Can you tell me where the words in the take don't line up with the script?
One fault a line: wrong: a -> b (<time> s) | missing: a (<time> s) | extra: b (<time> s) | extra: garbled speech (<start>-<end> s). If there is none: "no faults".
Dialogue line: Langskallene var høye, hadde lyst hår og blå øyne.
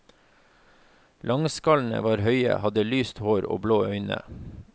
no faults